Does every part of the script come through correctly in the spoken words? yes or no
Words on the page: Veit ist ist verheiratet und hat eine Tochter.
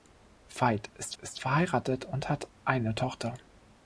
yes